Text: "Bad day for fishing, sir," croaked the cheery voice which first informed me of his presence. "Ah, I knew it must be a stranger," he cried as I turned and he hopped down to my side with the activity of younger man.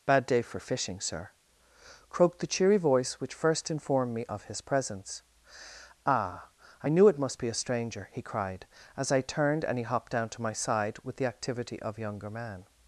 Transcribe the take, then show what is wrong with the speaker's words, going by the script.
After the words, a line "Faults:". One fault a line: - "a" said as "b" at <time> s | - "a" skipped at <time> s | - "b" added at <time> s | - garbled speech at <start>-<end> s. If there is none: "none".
"Bad day for fishing, sir," croaked the cheery voice which first informed me of his presence. "Ah, I knew it must be a stranger," he cried as I turned and he hopped down to my side with the activity of younger man.
Faults:
none